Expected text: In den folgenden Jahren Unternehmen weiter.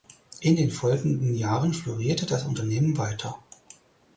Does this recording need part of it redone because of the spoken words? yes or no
yes